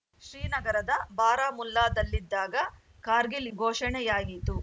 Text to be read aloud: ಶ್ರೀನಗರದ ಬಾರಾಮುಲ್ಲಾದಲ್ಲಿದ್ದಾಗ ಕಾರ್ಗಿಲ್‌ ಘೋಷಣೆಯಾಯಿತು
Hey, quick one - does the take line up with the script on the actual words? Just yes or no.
yes